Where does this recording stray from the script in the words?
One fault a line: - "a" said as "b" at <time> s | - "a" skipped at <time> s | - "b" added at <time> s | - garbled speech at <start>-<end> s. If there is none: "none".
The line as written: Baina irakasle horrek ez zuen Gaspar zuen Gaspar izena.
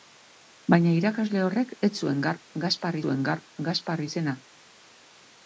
none